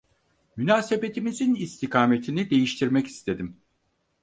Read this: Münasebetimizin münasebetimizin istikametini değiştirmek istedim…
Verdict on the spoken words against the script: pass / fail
fail